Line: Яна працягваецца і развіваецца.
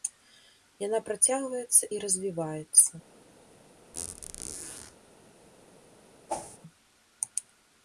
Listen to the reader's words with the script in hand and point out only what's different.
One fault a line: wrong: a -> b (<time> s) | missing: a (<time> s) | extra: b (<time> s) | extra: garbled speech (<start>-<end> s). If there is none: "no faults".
no faults